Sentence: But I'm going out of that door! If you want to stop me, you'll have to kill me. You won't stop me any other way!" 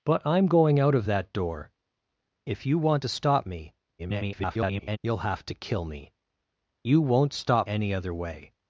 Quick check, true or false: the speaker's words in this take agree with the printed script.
false